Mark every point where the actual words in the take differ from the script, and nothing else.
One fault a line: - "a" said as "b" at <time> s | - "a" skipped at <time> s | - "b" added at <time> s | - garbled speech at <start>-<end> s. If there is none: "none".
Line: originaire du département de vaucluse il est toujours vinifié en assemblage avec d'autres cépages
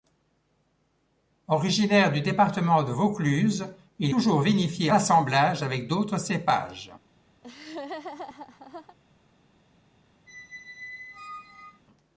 - "est" skipped at 4.1 s
- "en" skipped at 4.9 s